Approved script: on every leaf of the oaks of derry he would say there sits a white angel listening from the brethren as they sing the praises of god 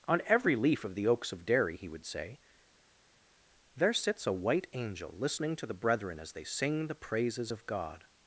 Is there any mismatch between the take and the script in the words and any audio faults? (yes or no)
yes